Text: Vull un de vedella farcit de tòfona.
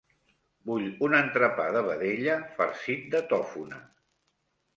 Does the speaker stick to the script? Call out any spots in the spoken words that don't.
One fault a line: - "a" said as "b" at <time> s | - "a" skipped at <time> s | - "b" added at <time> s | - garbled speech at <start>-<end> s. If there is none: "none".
- "entrepà" added at 1.2 s